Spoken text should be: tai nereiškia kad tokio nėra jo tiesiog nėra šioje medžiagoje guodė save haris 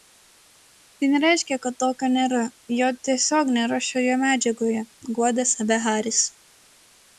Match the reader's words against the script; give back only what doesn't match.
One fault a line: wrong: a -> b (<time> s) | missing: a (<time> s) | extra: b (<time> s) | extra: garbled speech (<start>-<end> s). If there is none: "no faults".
no faults